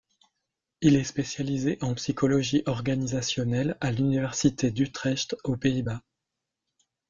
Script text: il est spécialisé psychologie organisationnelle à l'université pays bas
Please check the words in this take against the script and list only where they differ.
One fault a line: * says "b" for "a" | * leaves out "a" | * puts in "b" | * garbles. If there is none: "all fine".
* puts in "en"
* puts in "d'utrecht aux"